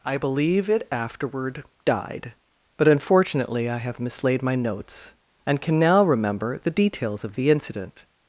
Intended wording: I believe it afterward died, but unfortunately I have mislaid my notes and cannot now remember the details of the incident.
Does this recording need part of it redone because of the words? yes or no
yes